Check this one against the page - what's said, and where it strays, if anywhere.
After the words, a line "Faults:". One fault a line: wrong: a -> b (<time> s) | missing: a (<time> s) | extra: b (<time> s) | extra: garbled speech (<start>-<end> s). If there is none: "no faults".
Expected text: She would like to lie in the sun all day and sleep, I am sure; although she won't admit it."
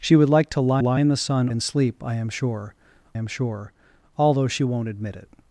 She would like to lie lie in the sun and sleep, I am sure am sure; although she won't admit it."
Faults:
extra: lie (0.8 s)
missing: all day (1.5 s)
extra: am sure (3.1 s)